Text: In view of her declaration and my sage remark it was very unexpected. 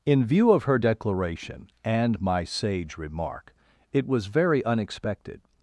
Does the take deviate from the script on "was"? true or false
false